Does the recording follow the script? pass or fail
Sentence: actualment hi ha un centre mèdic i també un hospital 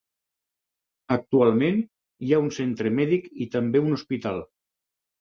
pass